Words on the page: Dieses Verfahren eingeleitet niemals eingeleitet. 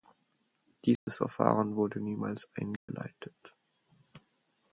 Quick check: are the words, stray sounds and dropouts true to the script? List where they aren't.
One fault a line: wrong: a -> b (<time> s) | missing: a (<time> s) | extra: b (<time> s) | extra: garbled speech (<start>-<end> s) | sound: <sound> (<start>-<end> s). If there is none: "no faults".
sound: dropout (1.0-1.1 s)
wrong: eingeleitet -> wurde (1.8 s)
sound: dropout (2.8-2.9 s)